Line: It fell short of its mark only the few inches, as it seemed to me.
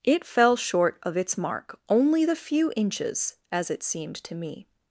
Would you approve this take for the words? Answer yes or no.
yes